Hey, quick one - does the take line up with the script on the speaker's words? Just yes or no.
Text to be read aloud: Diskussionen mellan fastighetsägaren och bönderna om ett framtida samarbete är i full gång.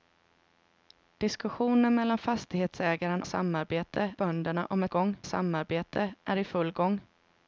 no